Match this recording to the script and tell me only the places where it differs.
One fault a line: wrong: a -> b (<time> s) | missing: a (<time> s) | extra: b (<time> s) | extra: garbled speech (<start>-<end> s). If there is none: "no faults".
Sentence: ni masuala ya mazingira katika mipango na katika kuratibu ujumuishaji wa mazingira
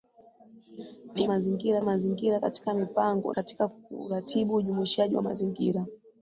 wrong: masuala -> mazingira (1.3 s)
missing: na (3.3 s)